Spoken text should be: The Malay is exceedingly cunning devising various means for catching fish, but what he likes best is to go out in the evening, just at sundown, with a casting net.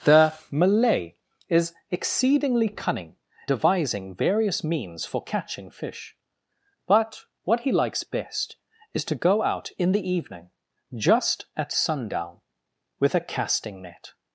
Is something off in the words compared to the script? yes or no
no